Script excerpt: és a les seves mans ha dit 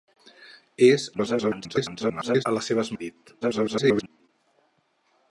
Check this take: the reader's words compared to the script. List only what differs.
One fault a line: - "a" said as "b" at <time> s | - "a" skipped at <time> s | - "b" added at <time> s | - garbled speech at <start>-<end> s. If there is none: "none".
- garbled speech at 1.1-2.4 s
- "mans" skipped at 2.9 s
- garbled speech at 3.4-4.3 s